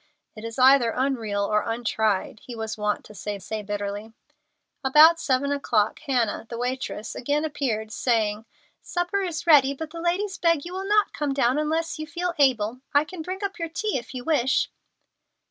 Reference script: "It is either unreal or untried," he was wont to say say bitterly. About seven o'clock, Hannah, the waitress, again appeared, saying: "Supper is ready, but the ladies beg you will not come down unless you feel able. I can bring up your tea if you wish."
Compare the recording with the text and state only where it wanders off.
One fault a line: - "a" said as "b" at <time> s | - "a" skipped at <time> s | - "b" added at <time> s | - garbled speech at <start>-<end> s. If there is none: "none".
none